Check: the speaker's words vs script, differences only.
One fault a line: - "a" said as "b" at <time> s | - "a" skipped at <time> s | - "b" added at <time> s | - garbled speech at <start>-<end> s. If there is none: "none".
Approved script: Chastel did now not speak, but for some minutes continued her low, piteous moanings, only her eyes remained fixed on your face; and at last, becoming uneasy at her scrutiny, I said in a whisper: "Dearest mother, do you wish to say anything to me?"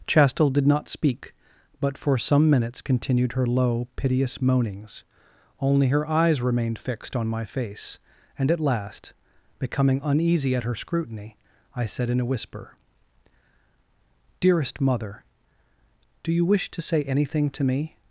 - "now" skipped at 0.7 s
- "your" said as "my" at 7.3 s